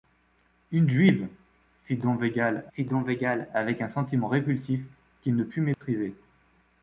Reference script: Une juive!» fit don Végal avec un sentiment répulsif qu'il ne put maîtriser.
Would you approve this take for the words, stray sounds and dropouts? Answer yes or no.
no